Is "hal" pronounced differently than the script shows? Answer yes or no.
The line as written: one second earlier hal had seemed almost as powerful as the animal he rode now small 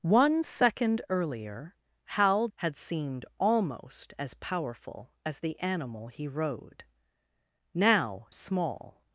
no